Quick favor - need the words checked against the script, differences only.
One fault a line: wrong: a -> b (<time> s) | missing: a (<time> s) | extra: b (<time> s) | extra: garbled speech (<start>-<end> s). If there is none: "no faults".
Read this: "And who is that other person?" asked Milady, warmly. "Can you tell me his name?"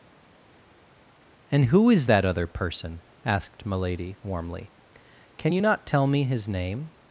extra: not (5.6 s)